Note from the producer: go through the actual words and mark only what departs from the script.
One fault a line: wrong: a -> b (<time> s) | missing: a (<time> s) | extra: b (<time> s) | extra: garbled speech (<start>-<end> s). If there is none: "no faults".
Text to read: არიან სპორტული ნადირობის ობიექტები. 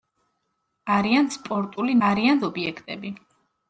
wrong: ნადირობის -> არიან (2.1 s)